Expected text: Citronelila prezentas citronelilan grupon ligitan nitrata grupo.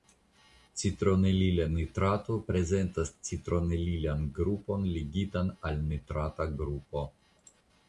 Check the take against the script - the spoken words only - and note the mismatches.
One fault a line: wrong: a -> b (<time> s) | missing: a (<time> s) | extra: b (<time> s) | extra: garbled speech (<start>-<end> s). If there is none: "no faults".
extra: nitrato (1.7 s)
extra: al (5.7 s)